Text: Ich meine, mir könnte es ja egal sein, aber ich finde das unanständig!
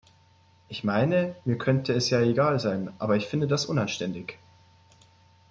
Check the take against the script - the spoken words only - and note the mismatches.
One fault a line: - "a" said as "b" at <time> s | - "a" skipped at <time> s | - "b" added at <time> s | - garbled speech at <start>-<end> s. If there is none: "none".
none